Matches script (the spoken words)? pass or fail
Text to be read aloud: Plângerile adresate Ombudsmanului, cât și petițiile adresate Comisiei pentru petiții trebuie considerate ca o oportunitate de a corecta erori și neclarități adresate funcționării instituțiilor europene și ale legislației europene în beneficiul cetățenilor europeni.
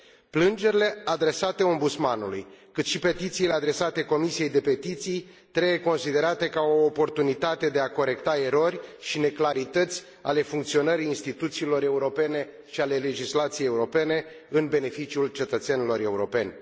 fail